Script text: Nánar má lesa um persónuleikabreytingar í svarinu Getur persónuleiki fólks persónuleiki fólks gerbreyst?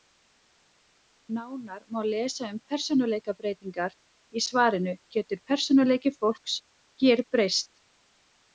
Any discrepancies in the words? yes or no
yes